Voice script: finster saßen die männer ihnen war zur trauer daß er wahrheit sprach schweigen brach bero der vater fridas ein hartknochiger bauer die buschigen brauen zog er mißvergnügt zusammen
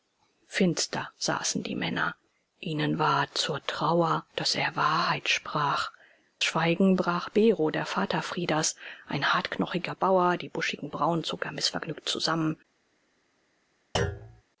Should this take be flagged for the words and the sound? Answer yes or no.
yes